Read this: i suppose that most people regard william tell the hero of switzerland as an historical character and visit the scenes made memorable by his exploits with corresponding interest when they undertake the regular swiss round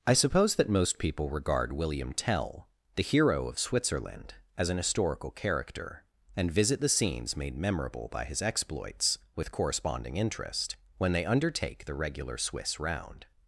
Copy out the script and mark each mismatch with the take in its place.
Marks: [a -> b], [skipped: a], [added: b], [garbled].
i suppose that most people regard william tell the hero of switzerland as an historical character and visit the scenes made memorable by his exploits with corresponding interest when they undertake the regular swiss round